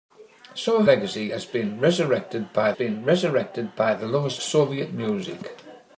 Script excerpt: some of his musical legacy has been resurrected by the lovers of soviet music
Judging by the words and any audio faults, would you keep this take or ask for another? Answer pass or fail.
fail